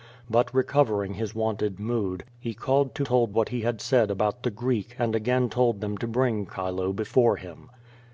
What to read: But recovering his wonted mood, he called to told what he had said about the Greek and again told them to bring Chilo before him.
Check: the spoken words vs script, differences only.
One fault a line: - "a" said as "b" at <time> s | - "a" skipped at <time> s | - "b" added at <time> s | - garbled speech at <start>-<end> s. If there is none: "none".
none